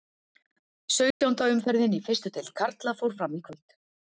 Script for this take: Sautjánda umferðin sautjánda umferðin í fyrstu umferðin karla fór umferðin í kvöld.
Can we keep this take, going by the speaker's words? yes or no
no